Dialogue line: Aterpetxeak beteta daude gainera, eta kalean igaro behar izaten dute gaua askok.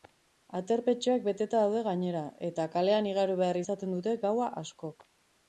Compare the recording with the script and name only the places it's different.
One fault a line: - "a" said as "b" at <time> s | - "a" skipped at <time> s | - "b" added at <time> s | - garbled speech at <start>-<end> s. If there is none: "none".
none